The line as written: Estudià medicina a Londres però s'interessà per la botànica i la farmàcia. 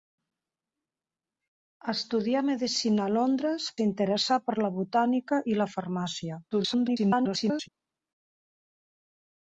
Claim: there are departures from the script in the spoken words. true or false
true